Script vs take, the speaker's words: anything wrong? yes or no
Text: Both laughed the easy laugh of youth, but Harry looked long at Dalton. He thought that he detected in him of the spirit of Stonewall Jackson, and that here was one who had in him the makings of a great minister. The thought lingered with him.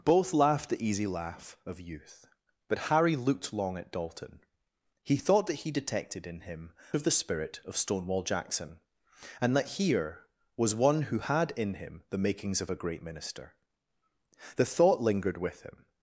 no